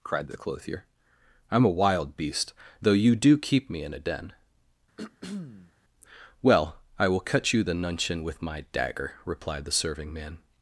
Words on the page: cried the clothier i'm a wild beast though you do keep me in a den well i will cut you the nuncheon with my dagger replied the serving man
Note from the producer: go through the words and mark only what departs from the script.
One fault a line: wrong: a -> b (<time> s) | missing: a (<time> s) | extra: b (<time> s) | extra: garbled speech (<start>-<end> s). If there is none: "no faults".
no faults